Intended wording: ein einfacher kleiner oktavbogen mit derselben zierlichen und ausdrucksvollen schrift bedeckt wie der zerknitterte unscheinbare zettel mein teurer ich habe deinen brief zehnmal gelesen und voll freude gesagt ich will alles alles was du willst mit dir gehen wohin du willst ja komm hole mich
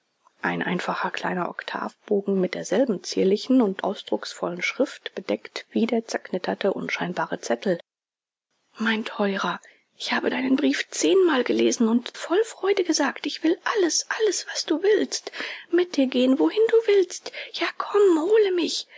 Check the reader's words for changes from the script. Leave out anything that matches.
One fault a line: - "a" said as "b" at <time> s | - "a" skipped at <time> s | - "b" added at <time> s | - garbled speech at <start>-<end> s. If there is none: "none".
none